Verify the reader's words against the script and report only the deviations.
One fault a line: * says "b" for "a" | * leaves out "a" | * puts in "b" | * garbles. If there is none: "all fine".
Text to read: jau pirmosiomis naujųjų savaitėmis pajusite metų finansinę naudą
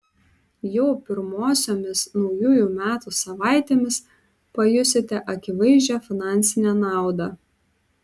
* puts in "metų"
* says "akivaizdžią" for "metų"